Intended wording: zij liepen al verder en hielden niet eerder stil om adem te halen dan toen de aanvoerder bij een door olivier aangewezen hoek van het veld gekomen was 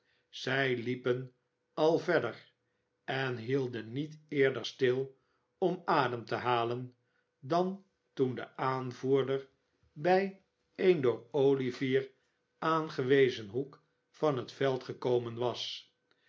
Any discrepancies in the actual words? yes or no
no